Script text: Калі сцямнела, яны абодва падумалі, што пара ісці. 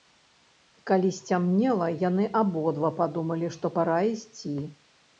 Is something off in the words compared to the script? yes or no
no